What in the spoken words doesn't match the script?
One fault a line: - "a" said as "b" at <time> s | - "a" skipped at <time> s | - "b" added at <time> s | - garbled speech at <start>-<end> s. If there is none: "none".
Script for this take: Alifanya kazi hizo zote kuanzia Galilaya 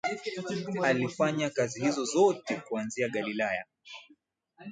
none